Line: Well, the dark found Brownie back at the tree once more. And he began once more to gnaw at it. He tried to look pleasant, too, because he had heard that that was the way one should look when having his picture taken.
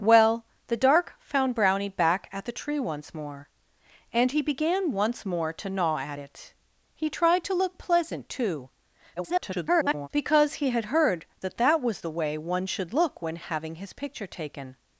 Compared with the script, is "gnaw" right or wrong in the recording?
right